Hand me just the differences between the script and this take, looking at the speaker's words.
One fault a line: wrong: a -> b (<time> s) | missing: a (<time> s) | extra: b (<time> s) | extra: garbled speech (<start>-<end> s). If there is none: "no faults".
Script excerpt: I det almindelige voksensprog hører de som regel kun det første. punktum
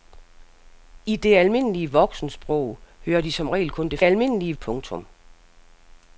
wrong: første -> almindelige (4.0 s)